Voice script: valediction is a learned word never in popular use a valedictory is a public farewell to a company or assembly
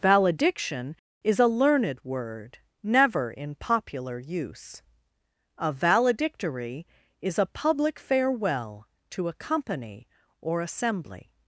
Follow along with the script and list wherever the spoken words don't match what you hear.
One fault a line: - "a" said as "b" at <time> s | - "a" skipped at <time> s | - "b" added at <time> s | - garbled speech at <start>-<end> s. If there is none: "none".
none